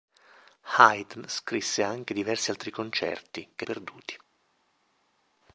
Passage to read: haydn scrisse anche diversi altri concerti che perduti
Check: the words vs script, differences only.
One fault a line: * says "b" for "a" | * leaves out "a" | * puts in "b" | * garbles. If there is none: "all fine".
all fine